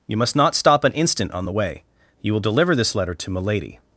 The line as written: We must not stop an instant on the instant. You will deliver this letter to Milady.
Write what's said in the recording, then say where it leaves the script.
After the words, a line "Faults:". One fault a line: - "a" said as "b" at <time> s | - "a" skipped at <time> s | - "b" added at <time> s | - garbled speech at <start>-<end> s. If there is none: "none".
You must not stop an instant on the way. You will deliver this letter to Milady.
Faults:
- "We" said as "You" at 0.1 s
- "instant" said as "way" at 1.5 s